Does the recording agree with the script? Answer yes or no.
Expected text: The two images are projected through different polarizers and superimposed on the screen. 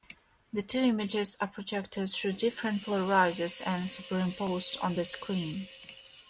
yes